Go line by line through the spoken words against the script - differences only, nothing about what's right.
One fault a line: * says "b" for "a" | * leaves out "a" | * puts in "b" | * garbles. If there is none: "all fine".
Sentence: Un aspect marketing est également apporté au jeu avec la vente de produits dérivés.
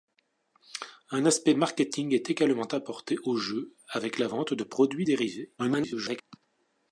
* garbles